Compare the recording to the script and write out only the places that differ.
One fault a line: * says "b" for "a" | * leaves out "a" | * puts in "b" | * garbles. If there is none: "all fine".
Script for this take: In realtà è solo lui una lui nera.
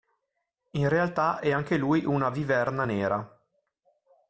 * says "anche" for "solo"
* says "viverna" for "lui"